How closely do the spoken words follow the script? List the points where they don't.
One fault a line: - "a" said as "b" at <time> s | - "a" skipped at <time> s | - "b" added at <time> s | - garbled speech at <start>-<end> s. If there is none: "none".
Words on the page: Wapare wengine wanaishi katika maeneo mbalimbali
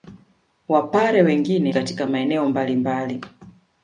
- "wanaishi" skipped at 1.8 s